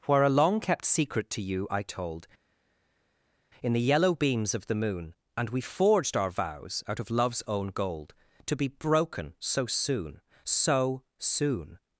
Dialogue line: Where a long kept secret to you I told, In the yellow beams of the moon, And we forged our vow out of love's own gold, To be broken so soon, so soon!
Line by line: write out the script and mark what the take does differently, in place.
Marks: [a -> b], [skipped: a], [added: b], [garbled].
Where a long kept secret to you I told, In the yellow beams of the moon, And we forged our [vow -> vows] out of love's own gold, To be broken so soon, so soon!